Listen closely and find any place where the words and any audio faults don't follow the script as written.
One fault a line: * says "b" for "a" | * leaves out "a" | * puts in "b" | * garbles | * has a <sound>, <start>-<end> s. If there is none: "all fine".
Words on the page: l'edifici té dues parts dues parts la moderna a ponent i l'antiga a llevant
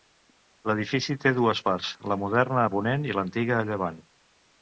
* leaves out "dues parts"